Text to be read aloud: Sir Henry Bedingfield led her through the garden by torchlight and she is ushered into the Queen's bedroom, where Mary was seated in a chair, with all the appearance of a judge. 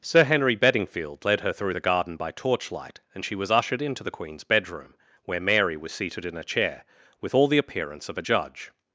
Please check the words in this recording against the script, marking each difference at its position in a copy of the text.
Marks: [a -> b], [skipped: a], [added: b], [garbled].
Sir Henry Bedingfield led her through the garden by torchlight and she [is -> was] ushered into the Queen's bedroom, where Mary was seated in a chair, with all the appearance of a judge.